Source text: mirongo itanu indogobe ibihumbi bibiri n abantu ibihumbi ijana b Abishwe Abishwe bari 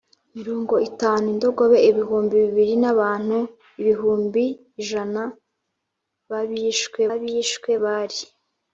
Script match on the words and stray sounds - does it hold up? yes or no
yes